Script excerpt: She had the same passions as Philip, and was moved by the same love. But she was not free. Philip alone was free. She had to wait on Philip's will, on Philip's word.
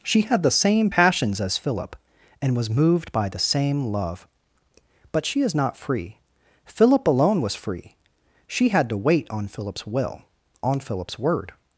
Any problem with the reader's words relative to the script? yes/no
yes